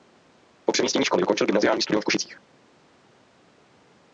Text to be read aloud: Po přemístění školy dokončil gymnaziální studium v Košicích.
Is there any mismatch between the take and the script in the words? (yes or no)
no